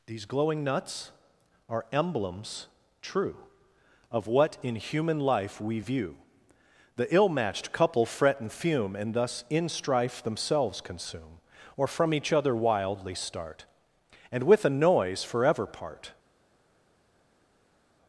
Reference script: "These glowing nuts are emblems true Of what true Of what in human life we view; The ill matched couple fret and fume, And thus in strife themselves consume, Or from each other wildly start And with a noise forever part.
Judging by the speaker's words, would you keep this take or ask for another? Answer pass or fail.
fail